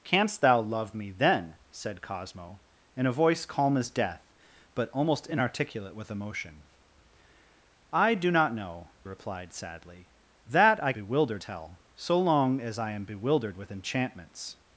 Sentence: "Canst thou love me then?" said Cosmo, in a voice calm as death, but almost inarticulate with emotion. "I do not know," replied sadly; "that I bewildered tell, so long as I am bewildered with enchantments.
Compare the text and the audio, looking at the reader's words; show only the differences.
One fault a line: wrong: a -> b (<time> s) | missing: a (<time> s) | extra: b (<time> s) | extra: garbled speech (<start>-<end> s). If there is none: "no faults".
no faults